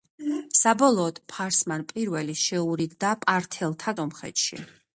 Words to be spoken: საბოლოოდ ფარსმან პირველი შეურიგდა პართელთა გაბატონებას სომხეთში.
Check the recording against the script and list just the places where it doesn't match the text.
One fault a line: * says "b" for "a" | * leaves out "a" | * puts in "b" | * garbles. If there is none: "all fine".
* leaves out "გაბატონებას"